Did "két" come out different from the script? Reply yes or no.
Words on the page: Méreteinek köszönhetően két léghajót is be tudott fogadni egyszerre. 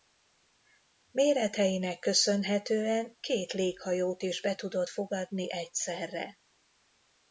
no